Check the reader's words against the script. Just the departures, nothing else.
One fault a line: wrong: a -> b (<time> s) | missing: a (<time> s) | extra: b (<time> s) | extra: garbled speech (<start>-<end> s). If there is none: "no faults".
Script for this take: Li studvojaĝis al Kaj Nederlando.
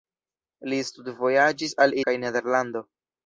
no faults